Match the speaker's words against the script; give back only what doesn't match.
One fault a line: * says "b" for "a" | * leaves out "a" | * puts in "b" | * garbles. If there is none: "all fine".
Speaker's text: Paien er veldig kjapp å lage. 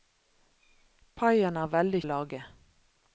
* leaves out "kjapp"